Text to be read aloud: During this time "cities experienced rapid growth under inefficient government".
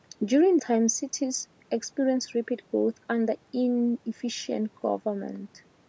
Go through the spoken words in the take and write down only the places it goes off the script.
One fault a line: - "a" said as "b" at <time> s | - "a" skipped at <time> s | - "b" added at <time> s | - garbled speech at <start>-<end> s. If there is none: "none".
- "this" skipped at 0.6 s